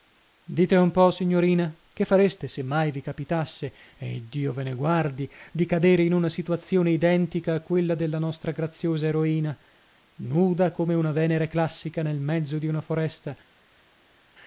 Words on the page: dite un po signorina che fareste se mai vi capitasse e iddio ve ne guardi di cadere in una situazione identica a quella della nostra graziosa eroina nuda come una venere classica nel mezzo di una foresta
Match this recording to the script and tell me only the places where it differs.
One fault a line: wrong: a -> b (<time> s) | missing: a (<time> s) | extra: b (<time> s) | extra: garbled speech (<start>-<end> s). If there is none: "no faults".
no faults